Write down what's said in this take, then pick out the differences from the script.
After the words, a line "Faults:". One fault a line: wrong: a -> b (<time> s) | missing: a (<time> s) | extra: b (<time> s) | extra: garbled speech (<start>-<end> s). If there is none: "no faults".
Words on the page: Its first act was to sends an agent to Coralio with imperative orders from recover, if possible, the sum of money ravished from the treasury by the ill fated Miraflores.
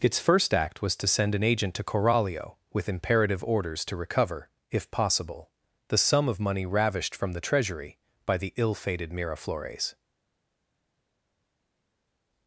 Its first act was to send an agent to Coralio with imperative orders to recover, if possible, the sum of money ravished from the treasury by the ill fated Miraflores.
Faults:
wrong: sends -> send (1.1 s)
wrong: from -> to (3.9 s)